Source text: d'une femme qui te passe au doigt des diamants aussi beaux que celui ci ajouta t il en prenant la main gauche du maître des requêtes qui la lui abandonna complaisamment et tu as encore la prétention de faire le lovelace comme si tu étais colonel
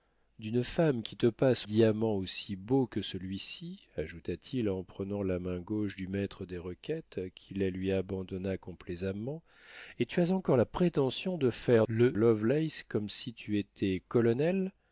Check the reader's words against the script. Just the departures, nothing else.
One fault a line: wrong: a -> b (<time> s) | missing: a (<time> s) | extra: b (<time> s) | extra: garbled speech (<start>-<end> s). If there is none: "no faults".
missing: au doigt des (1.7 s)